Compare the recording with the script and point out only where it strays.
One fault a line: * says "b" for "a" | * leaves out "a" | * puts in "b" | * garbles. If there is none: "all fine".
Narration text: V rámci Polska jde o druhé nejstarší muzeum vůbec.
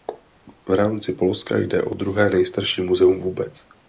all fine